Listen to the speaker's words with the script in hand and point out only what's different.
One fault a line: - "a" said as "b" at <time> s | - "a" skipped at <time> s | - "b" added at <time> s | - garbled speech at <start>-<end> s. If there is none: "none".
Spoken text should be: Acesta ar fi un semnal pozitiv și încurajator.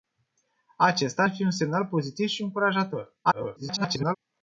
- garbled speech at 3.2-4.2 s